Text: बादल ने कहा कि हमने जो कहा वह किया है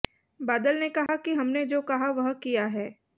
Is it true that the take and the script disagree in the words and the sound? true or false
true